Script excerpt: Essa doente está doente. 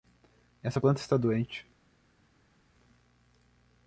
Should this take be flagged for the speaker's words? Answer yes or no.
yes